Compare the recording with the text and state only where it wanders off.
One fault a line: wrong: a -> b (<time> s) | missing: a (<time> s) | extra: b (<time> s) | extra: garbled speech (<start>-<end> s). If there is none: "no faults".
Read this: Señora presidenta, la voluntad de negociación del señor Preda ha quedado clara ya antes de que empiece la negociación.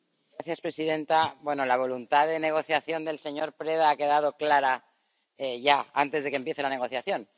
no faults